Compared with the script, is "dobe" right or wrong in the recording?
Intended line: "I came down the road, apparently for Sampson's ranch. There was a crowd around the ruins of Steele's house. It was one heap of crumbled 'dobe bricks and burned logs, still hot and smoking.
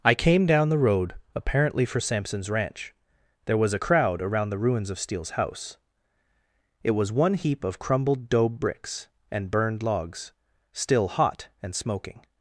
right